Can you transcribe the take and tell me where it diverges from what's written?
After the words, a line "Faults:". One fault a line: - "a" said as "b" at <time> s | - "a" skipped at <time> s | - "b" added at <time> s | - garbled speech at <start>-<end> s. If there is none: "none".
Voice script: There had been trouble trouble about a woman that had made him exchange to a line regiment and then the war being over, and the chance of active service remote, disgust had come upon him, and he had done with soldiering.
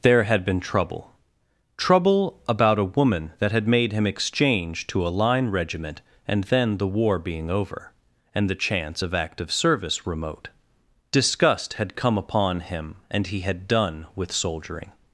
There had been trouble trouble about a woman that had made him exchange to a line regiment and then the war being over, and the chance of active service remote, disgust had come upon him, and he had done with soldiering.
Faults:
none